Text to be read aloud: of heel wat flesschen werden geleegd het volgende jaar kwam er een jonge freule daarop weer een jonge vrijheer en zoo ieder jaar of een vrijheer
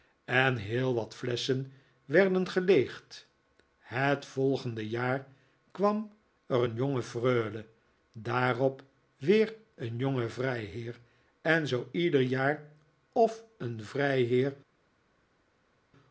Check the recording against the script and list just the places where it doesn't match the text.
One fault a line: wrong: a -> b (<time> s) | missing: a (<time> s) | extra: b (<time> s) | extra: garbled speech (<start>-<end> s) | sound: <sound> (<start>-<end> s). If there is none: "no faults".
wrong: of -> en (0.2 s)